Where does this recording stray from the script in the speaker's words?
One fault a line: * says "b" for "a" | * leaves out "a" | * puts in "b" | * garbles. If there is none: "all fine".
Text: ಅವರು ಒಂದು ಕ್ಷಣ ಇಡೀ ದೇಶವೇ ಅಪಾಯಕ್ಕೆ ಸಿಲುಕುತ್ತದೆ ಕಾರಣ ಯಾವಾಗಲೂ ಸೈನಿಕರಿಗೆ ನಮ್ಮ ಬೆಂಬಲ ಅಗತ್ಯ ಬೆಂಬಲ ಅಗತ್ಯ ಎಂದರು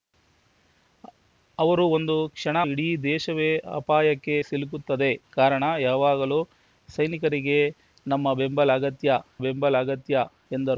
all fine